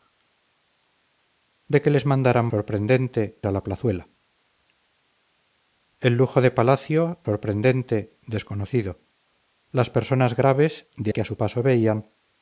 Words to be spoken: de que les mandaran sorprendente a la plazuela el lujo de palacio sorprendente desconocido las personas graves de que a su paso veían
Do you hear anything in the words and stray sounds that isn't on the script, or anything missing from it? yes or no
no